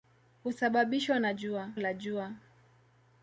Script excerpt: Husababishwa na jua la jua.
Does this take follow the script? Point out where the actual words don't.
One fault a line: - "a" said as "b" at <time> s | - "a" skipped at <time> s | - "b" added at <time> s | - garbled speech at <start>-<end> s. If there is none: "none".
none